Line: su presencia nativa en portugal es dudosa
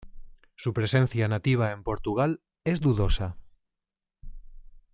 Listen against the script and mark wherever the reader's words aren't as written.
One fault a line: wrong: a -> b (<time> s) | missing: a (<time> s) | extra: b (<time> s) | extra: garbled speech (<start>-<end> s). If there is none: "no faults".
no faults